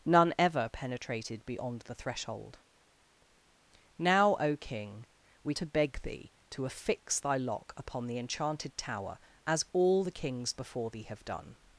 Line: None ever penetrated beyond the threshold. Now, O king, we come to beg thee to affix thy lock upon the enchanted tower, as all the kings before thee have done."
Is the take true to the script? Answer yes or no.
no